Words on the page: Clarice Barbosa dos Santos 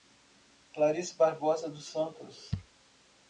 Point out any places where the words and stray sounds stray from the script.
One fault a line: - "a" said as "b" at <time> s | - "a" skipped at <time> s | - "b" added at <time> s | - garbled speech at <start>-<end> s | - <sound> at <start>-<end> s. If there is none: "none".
none